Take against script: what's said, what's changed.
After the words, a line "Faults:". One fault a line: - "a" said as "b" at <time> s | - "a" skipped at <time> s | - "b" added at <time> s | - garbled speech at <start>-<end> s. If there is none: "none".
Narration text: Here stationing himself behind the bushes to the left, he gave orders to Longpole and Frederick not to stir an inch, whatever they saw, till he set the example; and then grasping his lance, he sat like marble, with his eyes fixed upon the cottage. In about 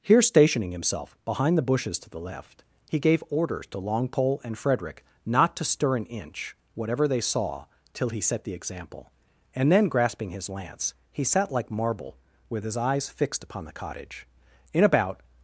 Here stationing himself behind the bushes to the left, he gave orders to Longpole and Frederick not to stir an inch, whatever they saw, till he set the example; and then grasping his lance, he sat like marble, with his eyes fixed upon the cottage. In about
Faults:
none